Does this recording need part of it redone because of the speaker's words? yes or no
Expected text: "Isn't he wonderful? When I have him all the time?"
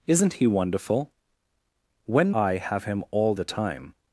no